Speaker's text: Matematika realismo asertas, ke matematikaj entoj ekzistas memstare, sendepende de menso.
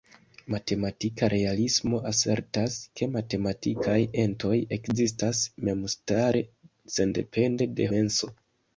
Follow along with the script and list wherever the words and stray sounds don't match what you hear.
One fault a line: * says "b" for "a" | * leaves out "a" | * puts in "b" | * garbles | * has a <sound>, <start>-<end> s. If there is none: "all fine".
all fine